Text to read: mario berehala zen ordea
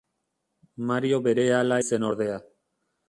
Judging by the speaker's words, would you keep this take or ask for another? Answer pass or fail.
pass